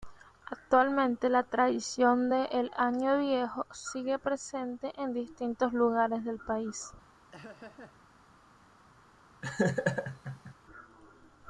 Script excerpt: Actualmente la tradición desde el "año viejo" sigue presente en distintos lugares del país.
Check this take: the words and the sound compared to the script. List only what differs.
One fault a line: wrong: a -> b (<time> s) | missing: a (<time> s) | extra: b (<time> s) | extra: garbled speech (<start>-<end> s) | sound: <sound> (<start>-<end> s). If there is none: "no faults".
wrong: desde -> de (2.3 s)
sound: laugh (7.3-8.0 s)
sound: laugh (9.4-10.5 s)